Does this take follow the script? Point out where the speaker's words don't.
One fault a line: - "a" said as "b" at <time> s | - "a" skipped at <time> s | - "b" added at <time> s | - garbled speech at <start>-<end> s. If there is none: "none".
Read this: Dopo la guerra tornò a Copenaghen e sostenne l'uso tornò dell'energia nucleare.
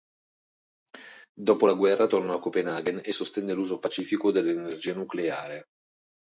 - "tornò" said as "pacifico" at 3.8 s